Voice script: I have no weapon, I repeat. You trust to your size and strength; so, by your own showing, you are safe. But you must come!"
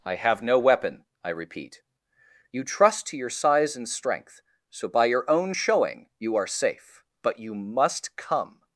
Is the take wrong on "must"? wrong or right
right